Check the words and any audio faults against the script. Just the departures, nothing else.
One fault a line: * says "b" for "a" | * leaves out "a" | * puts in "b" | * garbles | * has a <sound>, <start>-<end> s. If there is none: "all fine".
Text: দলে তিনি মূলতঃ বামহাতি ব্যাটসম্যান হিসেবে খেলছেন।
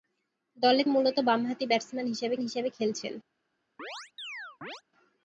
* leaves out "তিনি"
* puts in "হিসেবে"
* has a chirp, 3.8-4.8 s